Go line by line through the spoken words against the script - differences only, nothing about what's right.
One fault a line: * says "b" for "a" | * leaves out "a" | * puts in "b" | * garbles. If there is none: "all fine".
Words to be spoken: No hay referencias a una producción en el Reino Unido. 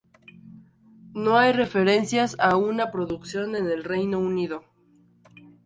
all fine